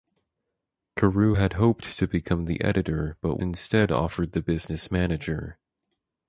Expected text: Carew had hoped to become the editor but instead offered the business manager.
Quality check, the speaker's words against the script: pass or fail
pass